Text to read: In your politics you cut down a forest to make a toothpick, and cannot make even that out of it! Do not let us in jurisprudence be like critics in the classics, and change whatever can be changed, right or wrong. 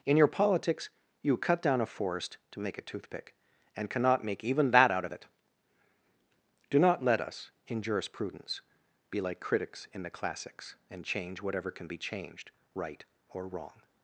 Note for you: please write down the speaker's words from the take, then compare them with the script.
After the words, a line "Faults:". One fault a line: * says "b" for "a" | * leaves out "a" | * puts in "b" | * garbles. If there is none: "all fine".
In your politics you cut down a forest to make a toothpick, and cannot make even that out of it! Do not let us in jurisprudence be like critics in the classics, and change whatever can be changed, right or wrong.
Faults:
all fine